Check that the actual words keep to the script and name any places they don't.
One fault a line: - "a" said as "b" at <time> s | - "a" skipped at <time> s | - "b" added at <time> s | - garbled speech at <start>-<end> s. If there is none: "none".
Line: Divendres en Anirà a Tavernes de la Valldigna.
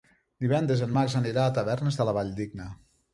- "Max" added at 1.0 s